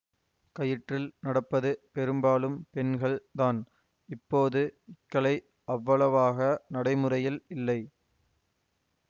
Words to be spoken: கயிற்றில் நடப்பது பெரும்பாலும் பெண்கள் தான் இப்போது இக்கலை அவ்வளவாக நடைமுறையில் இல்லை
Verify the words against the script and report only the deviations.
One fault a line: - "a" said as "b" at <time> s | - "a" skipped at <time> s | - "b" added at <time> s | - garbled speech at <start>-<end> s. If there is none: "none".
none